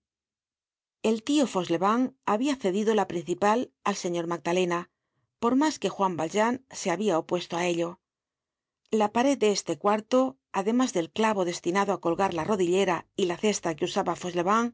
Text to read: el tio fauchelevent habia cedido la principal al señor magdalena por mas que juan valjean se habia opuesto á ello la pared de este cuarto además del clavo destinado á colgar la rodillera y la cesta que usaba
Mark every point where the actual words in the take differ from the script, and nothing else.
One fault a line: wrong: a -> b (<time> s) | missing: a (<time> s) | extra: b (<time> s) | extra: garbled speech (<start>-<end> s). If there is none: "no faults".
no faults